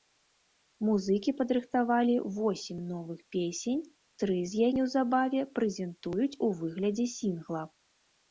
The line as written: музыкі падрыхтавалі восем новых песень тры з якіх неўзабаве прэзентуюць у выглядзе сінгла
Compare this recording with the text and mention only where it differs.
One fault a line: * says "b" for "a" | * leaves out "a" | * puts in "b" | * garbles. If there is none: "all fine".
* leaves out "якіх"